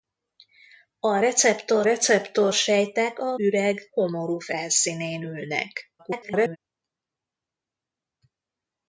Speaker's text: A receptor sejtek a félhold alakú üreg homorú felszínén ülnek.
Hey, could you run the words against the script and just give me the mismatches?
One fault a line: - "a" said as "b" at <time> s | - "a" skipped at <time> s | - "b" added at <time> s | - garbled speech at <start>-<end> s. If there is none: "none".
- "receptor" added at 1.8 s
- "félhold alakú" skipped at 3.4 s
- garbled speech at 6.0-6.6 s